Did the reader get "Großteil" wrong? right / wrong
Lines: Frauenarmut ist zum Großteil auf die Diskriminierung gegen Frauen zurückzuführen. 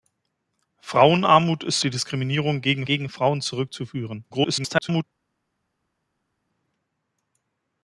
wrong